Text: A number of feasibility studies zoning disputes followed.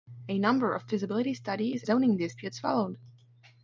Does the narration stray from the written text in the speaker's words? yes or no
no